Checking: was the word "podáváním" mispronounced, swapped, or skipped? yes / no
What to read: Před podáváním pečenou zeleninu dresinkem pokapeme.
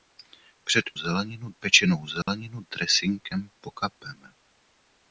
yes